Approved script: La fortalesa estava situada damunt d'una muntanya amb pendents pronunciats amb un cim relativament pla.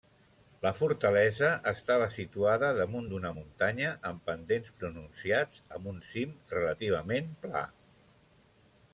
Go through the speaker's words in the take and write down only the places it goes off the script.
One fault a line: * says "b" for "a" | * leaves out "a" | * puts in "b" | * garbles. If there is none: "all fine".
all fine